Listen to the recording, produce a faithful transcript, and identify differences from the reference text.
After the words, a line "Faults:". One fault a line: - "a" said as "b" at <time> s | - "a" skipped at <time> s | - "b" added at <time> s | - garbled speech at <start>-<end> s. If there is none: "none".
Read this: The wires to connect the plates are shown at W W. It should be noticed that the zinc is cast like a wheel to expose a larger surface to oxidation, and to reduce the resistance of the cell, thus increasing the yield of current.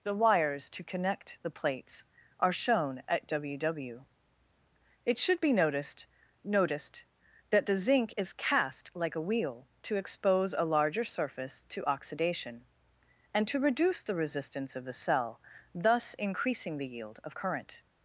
The wires to connect the plates are shown at W W. It should be noticed noticed that the zinc is cast like a wheel to expose a larger surface to oxidation, and to reduce the resistance of the cell, thus increasing the yield of current.
Faults:
- "noticed" added at 6.4 s